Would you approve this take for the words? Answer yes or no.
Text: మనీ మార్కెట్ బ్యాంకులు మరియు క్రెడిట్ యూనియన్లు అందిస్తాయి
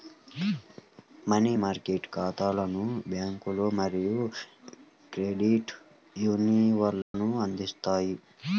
no